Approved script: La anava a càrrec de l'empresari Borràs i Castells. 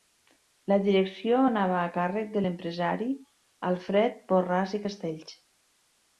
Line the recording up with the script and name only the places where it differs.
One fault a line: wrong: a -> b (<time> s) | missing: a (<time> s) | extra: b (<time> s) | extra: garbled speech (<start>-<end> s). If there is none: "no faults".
extra: direcció (0.8 s)
extra: Alfred (3.7 s)